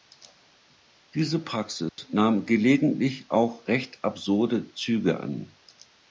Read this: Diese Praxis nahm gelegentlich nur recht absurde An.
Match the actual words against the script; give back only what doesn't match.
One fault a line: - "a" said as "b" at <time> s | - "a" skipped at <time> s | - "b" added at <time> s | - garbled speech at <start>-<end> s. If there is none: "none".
- "nur" said as "auch" at 3.3 s
- "Züge" added at 4.7 s